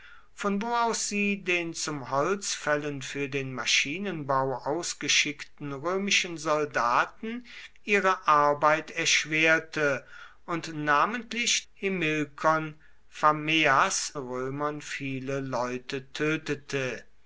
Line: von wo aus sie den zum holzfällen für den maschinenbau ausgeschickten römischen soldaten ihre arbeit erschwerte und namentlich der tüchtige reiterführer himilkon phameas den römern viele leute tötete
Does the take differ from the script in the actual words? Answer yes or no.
yes